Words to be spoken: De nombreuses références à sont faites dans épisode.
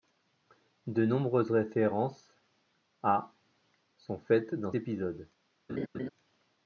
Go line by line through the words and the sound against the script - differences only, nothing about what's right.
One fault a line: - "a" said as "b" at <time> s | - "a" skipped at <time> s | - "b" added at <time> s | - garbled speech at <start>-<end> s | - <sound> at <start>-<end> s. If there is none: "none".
- laugh at 5.7-6.1 s